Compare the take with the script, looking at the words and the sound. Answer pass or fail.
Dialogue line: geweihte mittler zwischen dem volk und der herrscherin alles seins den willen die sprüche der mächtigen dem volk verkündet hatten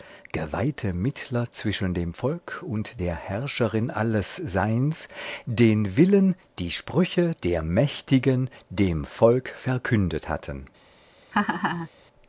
fail